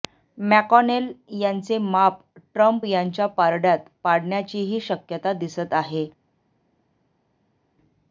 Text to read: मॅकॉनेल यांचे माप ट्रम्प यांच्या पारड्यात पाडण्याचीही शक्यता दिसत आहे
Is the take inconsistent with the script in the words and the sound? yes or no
no